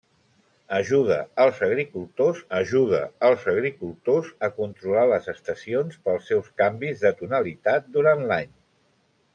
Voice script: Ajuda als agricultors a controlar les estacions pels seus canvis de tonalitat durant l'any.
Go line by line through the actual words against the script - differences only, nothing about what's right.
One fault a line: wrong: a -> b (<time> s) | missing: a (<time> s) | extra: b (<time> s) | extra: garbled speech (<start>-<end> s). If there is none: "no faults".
extra: ajuda als agricultors (2.6 s)